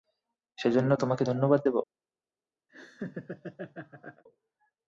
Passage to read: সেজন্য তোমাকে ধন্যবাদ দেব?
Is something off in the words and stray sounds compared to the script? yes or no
yes